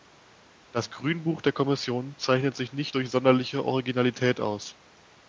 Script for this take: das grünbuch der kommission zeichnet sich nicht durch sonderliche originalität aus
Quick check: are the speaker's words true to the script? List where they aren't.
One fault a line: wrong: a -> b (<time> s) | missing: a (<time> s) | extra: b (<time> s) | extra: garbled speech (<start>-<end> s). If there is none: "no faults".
no faults